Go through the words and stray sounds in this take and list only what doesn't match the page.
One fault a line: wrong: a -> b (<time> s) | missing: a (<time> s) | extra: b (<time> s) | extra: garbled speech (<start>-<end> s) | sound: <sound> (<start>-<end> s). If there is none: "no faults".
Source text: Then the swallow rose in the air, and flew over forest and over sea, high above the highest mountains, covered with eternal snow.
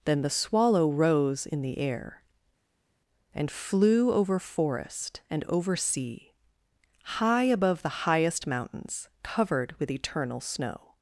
no faults